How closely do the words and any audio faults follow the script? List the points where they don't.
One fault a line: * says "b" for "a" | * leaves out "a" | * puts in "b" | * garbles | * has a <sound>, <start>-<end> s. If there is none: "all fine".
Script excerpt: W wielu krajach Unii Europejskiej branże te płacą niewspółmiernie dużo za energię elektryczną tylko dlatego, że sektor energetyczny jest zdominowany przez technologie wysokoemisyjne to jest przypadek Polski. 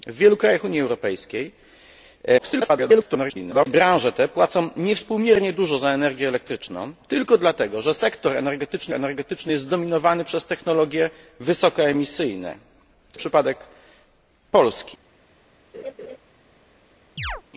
* garbles
* puts in "energetyczny"
* leaves out "jest"
* has a laugh, 15.7-16.2 s
* has a chirp, 17.2-17.4 s